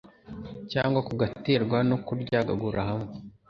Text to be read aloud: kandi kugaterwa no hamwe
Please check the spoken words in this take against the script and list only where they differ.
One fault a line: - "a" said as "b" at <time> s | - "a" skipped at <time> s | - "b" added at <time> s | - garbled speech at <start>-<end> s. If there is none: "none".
- "kandi" said as "cyangwa" at 0.7 s
- "kuryagagura" added at 2.0 s